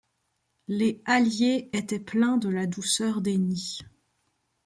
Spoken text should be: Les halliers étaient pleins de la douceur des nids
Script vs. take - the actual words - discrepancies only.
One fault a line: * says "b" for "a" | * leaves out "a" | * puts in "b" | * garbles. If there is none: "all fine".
all fine